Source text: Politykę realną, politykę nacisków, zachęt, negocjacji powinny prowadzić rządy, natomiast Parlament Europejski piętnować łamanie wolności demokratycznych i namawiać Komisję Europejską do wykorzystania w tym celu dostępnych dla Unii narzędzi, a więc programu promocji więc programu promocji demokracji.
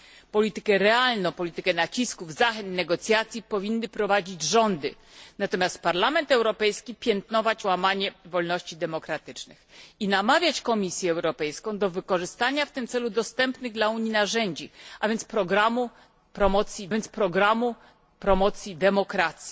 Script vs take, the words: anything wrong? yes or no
no